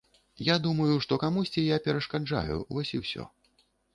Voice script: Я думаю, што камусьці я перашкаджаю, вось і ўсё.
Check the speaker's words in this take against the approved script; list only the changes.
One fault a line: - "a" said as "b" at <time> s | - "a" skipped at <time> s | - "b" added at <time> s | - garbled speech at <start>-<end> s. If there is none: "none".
none